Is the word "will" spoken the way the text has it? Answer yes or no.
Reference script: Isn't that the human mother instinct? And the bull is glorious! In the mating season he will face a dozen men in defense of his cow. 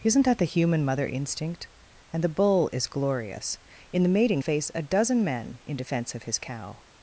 no